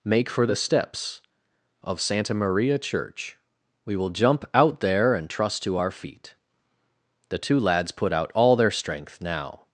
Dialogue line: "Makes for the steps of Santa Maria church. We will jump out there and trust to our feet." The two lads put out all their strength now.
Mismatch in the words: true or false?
true